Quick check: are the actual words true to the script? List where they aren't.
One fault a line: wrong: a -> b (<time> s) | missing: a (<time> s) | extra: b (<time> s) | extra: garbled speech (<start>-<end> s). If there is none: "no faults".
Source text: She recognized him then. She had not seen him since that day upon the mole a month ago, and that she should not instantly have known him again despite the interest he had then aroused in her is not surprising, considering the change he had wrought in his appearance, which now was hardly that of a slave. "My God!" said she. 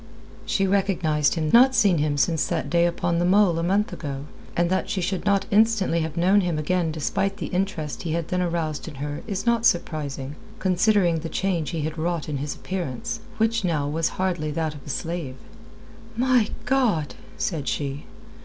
missing: then She had (1.5 s)